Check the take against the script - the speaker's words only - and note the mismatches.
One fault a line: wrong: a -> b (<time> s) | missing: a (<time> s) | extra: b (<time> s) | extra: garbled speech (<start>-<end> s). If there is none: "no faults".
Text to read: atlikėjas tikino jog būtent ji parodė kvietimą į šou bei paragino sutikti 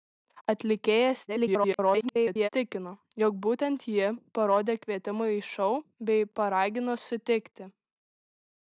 extra: garbled speech (1.3-2.5 s)